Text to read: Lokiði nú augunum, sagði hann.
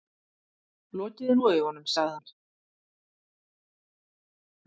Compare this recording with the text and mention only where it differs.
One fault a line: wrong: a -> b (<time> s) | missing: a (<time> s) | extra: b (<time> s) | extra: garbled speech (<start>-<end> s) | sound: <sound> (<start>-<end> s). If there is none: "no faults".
no faults